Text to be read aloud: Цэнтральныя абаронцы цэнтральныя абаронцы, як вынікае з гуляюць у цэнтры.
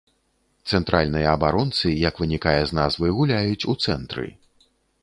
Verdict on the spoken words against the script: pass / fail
fail